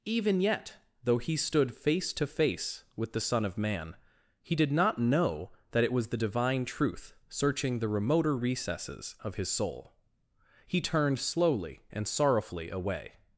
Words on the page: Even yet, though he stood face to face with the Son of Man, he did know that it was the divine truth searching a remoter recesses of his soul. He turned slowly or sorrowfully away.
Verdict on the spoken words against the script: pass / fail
fail